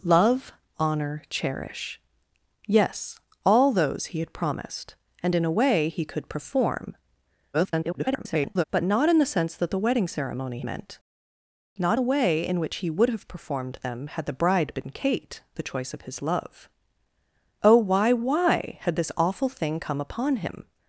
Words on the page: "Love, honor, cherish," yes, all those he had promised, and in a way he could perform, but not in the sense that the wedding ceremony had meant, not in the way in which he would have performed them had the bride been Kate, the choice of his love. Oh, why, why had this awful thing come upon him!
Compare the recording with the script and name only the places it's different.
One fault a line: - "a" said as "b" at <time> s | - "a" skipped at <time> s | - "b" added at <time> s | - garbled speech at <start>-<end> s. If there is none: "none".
- garbled speech at 7.5-8.6 s
- "had" skipped at 10.6 s
- "in" skipped at 12.0 s